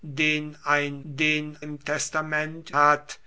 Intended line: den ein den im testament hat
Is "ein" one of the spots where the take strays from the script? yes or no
no